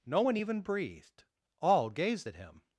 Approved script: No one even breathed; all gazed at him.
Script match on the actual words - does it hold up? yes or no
yes